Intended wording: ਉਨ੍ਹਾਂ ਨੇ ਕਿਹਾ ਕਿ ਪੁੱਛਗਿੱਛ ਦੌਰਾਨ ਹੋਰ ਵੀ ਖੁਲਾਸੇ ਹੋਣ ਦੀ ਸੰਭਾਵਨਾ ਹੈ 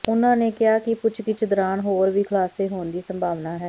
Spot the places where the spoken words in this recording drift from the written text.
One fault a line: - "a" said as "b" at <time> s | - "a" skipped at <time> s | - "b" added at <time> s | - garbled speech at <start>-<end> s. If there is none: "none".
none